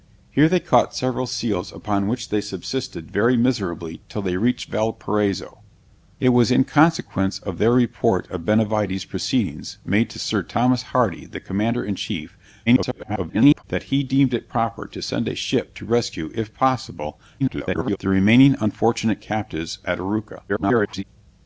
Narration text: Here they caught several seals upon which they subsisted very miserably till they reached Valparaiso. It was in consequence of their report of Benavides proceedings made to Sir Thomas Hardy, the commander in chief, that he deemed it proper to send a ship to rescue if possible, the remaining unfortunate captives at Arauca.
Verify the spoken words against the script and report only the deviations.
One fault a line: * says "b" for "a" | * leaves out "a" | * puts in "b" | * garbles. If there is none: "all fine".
* garbles
* garbles
* garbles